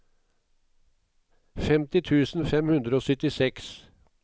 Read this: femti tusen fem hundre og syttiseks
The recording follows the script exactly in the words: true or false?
true